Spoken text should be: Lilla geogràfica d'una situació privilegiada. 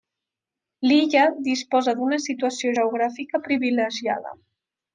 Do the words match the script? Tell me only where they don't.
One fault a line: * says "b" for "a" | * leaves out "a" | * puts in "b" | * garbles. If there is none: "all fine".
* says "disposa" for "geogràfica"
* puts in "geogràfica"